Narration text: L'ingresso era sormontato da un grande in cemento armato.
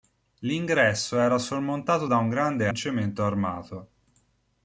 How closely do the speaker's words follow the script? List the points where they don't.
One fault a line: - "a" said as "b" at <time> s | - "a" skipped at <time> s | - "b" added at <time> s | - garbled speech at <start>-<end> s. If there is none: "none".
none